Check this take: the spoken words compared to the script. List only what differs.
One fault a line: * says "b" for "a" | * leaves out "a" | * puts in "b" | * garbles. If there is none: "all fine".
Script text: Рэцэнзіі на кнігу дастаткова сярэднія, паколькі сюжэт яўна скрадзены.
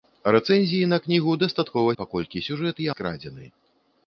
* leaves out "сярэднія"
* leaves out "яўна"